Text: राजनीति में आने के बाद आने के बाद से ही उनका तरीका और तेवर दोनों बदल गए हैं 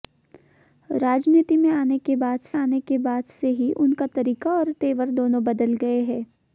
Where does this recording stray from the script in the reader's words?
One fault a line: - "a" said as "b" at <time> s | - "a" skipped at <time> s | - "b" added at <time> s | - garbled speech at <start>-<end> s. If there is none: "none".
none